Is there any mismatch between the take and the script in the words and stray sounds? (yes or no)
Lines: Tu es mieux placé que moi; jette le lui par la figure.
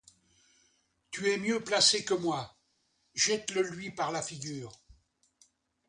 no